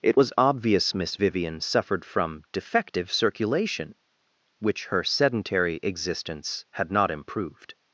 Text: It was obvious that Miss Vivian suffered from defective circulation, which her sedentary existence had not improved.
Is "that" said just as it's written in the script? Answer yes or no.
no